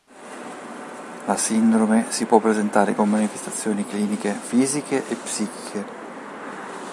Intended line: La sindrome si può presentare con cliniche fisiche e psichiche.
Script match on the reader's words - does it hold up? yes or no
no